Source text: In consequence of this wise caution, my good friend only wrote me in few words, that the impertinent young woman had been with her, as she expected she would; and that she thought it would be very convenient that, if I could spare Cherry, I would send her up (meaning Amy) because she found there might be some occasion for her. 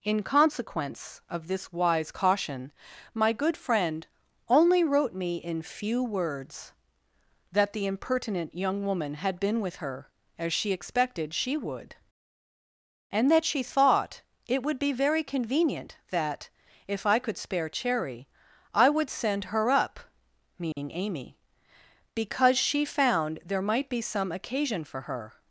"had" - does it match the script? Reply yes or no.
yes